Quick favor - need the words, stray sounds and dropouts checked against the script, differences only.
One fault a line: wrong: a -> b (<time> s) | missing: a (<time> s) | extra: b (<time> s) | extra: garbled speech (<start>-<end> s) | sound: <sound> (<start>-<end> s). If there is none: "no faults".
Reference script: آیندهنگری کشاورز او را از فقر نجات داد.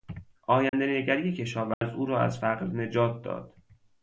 sound: dropout (0.7-0.7 s)
sound: dropout (1.7-1.8 s)